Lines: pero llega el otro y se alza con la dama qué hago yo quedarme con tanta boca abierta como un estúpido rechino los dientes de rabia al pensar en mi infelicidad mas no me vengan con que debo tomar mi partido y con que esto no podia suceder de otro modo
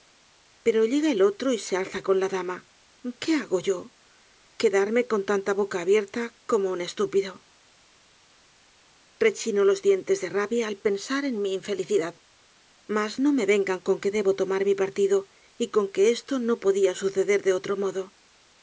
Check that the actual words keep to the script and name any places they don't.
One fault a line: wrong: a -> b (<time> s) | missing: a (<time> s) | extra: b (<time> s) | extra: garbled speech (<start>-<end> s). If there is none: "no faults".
no faults